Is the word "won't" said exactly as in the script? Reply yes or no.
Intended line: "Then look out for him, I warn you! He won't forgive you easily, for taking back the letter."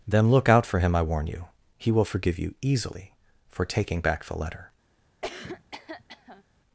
no